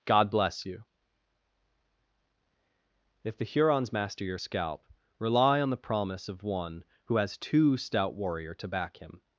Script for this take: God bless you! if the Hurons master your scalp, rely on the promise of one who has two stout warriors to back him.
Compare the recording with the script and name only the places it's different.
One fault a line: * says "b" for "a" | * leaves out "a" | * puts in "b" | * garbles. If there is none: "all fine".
* says "warrior" for "warriors"